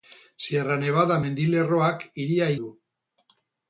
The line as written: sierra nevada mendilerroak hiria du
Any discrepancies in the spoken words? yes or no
no